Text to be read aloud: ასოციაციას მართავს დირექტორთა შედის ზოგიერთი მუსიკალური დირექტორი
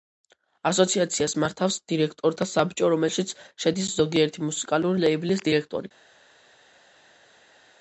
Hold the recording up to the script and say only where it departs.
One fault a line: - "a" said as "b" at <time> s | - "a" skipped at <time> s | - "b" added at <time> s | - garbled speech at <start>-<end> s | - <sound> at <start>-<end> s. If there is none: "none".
- "საბჭო რომელშიც" added at 2.5 s
- "ლეიბლის" added at 5.0 s